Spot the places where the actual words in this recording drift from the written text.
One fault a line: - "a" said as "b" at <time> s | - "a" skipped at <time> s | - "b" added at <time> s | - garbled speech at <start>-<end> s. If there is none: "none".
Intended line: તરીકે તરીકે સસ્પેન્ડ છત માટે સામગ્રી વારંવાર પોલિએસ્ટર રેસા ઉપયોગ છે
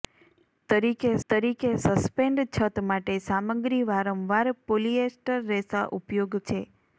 none